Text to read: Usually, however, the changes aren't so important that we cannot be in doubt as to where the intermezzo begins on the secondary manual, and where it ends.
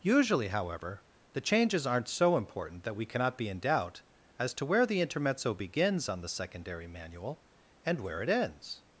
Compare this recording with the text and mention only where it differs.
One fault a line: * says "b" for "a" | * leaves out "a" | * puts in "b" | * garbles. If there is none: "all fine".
all fine